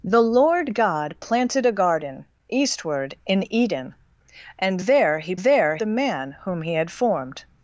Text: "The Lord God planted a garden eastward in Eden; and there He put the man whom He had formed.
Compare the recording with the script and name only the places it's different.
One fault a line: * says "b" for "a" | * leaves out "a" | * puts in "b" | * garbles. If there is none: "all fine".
* says "there" for "put"